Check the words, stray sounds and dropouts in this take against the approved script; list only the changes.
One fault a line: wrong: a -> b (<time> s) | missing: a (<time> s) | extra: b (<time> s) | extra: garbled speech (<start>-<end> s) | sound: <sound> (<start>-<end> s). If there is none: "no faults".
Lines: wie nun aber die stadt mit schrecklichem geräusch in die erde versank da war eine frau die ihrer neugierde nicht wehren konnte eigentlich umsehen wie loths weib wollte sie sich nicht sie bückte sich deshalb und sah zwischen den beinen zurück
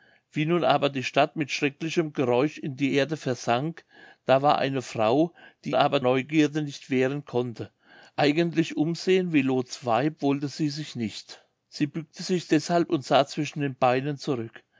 wrong: ihrer -> aber (5.7 s)